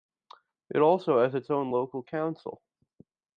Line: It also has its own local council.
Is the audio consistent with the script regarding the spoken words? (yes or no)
yes